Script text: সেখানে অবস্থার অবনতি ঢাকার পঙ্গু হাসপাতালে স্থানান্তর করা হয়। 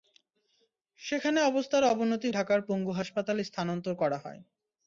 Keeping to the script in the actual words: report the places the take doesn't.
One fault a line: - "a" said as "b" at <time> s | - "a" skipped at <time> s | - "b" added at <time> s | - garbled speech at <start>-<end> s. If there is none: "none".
none